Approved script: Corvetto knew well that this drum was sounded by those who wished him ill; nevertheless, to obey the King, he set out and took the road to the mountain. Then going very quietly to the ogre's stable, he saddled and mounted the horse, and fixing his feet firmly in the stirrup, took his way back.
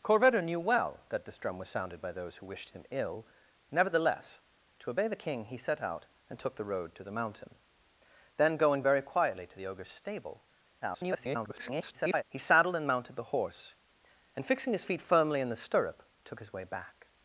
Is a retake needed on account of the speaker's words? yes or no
yes